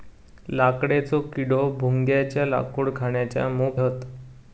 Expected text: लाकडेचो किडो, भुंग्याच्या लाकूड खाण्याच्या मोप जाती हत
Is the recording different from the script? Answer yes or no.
yes